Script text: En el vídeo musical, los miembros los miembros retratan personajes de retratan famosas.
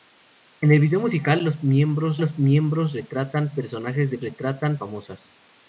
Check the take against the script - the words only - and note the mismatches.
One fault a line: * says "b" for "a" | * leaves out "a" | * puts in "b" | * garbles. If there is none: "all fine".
all fine